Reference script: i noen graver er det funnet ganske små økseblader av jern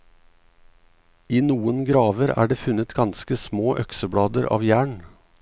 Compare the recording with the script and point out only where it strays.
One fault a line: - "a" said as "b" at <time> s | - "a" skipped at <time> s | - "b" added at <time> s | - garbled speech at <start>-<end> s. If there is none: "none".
none